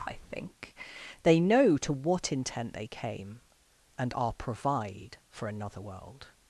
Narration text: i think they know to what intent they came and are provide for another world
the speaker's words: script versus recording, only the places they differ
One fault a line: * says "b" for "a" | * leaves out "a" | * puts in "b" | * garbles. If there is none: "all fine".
all fine